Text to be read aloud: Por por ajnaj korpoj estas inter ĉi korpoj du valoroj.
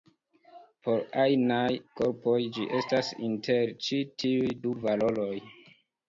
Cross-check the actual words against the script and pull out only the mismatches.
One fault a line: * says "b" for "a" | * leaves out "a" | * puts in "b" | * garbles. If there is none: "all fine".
* leaves out "por"
* puts in "ĝi"
* says "tiuj" for "korpoj"